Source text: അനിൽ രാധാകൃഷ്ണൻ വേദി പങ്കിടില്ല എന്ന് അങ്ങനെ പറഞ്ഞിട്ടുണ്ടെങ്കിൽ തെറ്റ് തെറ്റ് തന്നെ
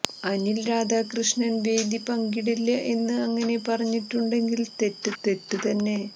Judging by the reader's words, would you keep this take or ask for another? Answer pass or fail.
pass